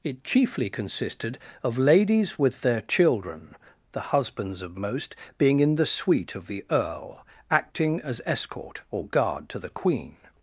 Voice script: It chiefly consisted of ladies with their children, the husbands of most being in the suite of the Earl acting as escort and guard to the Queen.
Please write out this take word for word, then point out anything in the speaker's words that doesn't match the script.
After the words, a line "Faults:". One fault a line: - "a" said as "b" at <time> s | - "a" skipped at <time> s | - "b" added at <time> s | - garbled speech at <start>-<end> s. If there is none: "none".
It chiefly consisted of ladies with their children, the husbands of most being in the suite of the Earl acting as escort or guard to the Queen.
Faults:
- "and" said as "or" at 8.9 s